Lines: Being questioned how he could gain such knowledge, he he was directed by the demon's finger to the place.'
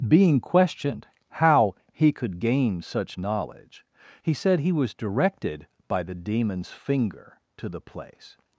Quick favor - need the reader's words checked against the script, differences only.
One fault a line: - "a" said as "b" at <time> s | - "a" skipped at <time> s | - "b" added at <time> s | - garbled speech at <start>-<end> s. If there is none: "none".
- "said" added at 4.3 s